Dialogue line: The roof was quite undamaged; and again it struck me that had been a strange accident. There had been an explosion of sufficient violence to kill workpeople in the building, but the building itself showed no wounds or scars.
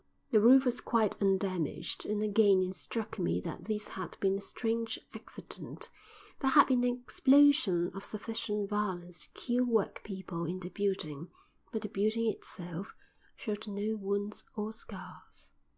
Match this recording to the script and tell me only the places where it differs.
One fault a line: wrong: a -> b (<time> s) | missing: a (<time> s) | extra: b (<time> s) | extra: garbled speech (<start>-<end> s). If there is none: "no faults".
extra: this (3.7 s)